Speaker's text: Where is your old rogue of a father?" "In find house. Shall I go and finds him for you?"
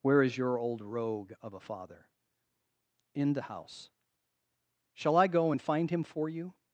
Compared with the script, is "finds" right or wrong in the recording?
wrong